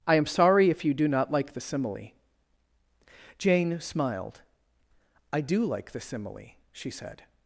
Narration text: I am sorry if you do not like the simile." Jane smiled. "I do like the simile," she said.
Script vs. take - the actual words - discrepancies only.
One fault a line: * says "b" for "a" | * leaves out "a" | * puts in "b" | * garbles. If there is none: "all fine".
all fine